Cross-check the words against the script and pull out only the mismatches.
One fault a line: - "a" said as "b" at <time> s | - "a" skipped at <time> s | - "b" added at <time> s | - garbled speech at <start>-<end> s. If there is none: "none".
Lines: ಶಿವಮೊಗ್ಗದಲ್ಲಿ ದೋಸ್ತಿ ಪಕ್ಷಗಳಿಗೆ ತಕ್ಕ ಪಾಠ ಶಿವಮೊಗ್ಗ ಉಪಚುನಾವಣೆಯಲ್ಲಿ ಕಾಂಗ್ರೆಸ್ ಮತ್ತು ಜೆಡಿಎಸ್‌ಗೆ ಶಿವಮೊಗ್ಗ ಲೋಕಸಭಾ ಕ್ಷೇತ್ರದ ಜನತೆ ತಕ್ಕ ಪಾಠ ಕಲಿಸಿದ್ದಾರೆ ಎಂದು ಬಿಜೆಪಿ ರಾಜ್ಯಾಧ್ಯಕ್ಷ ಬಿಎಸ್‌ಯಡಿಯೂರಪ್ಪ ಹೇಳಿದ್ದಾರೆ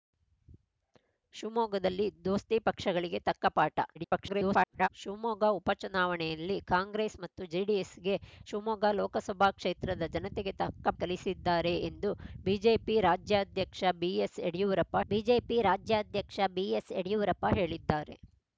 - garbled speech at 4.0-4.9 s
- "ಪಾಠ" skipped at 10.9 s
- "ಬಿಜೆಪಿ ರಾಜ್ಯಾಧ್ಯಕ್ಷ ಬಿಎಸ್‌ಯಡಿಯೂರಪ್ಪ" added at 15.1 s